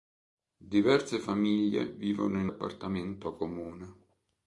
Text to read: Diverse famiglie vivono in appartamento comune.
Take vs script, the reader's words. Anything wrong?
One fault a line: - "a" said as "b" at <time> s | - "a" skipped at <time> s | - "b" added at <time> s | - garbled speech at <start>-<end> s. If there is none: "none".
none